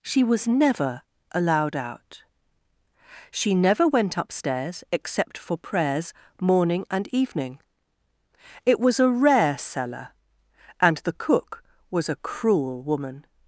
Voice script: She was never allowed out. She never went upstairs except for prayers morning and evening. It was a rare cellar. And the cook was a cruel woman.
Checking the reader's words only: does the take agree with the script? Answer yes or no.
yes